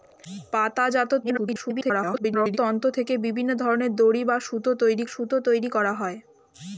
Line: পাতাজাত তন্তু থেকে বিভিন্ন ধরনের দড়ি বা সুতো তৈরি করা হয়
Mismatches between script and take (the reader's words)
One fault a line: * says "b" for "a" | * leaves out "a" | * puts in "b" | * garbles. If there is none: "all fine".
* garbles
* puts in "সুতো তৈরি"